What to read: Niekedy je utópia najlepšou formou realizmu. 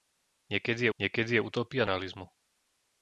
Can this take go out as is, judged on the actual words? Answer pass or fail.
fail